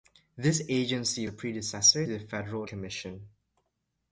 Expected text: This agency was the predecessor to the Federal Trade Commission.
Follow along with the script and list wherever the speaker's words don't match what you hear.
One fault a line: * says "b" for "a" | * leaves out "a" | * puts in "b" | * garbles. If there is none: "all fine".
* leaves out "was"
* leaves out "to"
* leaves out "Trade"